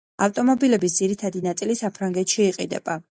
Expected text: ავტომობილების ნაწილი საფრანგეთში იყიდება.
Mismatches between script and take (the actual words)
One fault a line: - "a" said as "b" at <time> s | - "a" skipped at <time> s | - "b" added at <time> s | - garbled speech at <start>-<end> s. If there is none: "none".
- "ძირითადი" added at 1.0 s